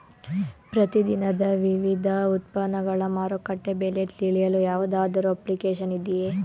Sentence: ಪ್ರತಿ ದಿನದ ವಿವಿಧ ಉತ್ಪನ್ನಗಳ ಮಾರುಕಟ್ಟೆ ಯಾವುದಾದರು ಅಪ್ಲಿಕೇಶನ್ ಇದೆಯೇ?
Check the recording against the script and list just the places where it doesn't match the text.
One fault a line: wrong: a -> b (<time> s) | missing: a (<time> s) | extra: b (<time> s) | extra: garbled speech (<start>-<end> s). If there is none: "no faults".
extra: ಬೆಲೆ ತಿಳಿಯಲು (3.8 s)